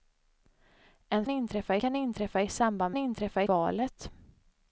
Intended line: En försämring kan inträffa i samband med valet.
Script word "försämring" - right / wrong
wrong